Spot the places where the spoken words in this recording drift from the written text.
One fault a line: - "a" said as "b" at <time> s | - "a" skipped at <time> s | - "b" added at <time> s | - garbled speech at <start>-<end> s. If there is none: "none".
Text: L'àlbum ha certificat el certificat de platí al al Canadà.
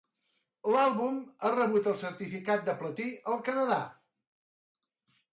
- "certificat" said as "rebut" at 1.6 s
- "al" skipped at 3.4 s